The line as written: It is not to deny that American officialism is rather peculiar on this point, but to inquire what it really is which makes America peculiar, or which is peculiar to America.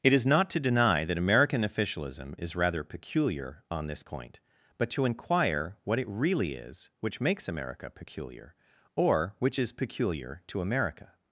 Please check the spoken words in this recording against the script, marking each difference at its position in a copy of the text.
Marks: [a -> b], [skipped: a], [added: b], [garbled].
It is not to deny that American officialism is rather peculiar on this point, but to inquire what it really is which makes America peculiar, or which is peculiar to America.